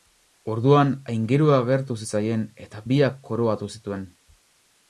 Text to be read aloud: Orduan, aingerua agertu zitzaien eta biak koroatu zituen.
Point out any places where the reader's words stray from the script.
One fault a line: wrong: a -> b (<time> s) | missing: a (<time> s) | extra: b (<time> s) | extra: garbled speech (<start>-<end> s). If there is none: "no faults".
no faults